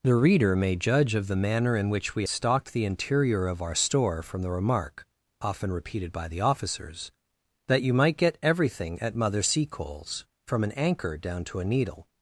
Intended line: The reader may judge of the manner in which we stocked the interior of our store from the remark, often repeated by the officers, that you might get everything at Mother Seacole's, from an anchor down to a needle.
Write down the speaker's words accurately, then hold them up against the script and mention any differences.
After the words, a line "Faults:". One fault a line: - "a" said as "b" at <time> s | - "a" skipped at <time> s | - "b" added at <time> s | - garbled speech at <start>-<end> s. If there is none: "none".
The reader may judge of the manner in which we stocked the interior of our store from the remark, often repeated by the officers, that you might get everything at Mother Seacole's, from an anchor down to a needle.
Faults:
none